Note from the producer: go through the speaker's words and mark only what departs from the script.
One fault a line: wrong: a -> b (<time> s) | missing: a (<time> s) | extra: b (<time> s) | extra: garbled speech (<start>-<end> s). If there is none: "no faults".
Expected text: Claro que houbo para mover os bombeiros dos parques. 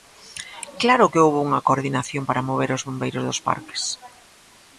extra: unha coordinación (1.5 s)